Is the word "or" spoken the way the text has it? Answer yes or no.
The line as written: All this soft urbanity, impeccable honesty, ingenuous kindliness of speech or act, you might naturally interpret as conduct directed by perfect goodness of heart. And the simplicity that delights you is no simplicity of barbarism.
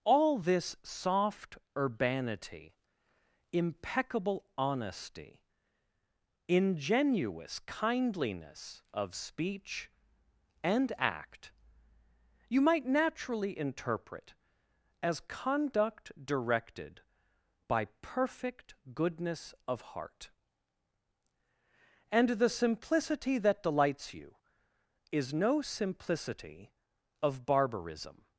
no